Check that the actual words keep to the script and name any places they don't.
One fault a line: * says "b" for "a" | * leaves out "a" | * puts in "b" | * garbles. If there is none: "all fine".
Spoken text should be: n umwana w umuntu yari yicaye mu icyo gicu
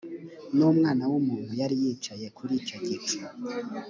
* says "kuri" for "mu"